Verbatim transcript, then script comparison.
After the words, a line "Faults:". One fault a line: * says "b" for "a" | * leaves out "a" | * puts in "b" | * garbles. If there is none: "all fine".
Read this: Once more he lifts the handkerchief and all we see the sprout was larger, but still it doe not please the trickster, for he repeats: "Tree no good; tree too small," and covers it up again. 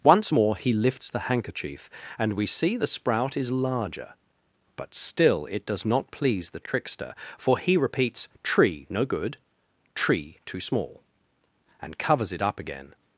Once more he lifts the handkerchief and we see the sprout is larger, but still it does not please the trickster, for he repeats: "Tree no good; tree too small," and covers it up again.
Faults:
* leaves out "all"
* says "is" for "was"
* says "does" for "doe"